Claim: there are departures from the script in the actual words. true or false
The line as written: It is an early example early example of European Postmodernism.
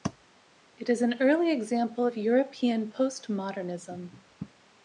true